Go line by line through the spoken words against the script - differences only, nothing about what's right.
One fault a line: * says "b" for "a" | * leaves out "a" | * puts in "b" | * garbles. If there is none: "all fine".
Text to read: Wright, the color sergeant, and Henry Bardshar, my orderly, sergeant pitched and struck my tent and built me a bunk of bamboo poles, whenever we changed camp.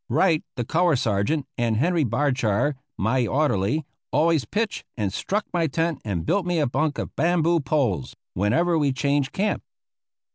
* says "always" for "sergeant"